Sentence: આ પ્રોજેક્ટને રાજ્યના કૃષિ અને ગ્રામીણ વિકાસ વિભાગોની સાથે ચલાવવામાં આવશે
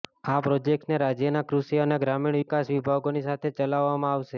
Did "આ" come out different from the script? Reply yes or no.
no